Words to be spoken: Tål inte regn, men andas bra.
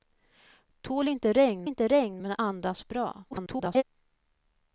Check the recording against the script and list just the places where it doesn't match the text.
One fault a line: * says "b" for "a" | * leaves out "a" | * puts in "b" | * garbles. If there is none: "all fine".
* puts in "inte regn"
* garbles